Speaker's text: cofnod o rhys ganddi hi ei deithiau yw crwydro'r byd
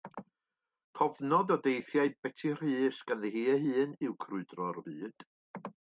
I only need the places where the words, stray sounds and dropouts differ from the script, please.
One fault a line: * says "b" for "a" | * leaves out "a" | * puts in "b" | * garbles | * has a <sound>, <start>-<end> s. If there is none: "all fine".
* puts in "deithiau beti"
* says "hun" for "deithiau"